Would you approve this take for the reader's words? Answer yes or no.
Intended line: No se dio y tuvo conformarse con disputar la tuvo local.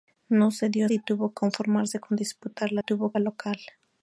yes